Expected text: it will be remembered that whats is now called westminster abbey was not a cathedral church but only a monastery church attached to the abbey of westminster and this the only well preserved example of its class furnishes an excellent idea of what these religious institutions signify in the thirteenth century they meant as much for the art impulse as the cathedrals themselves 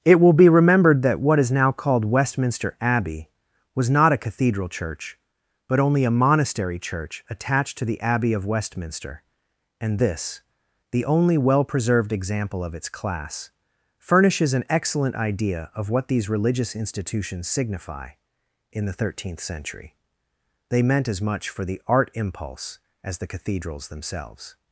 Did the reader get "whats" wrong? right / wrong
wrong